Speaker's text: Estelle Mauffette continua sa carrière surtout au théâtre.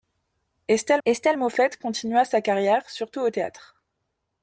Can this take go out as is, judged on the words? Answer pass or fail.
fail